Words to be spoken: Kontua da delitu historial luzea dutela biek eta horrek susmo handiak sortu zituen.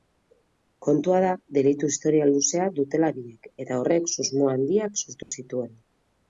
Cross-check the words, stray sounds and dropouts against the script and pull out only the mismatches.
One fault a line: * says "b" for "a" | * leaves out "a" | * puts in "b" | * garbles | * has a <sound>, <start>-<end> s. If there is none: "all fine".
* has a dropout, 5.2-5.3 s